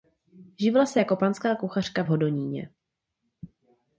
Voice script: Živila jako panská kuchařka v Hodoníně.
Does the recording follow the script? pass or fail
fail